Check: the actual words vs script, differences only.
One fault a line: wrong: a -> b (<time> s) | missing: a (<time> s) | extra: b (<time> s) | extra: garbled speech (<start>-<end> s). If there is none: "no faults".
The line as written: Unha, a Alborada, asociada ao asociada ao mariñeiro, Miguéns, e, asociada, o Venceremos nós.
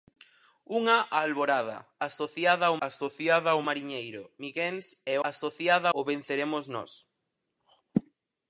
no faults